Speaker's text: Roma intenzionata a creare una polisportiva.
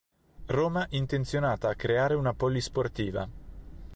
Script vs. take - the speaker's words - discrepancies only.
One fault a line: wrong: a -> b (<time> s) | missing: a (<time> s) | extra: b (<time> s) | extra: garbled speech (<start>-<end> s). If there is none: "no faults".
no faults